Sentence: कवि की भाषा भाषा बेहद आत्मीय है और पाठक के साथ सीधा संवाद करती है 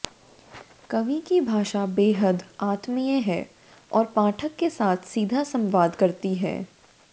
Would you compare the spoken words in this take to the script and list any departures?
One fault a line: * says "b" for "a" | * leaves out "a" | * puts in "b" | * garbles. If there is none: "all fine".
* leaves out "भाषा"